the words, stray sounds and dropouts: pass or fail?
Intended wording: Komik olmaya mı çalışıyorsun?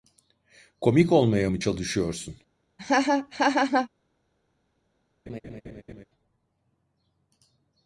fail